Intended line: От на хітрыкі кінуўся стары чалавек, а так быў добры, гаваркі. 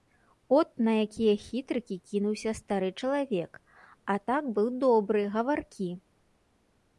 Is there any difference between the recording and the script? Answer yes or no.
yes